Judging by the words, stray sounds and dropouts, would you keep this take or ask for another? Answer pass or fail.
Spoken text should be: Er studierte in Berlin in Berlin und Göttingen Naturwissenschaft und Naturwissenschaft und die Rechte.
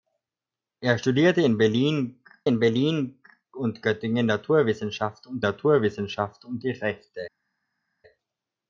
pass